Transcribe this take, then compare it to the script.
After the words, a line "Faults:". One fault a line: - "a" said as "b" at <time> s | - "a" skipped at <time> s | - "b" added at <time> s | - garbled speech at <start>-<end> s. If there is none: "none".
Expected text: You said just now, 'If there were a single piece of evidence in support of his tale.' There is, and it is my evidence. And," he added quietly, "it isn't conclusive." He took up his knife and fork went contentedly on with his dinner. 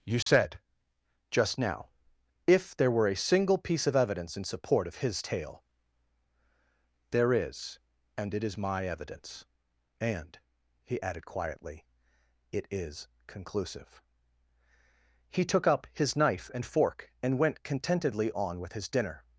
You said just now, 'If there were a single piece of evidence in support of his tale.' There is, and it is my evidence. And," he added quietly, "it is conclusive." He took up his knife and fork and went contentedly on with his dinner.
Faults:
- "isn't" said as "is" at 12.7 s
- "and" added at 17.2 s